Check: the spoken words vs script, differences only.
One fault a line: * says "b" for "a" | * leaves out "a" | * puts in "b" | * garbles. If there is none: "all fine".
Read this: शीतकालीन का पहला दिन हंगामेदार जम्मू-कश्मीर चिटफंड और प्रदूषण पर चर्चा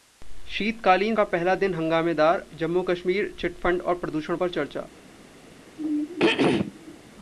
all fine